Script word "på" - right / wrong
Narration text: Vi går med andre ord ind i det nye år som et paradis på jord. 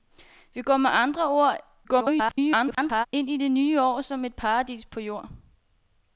right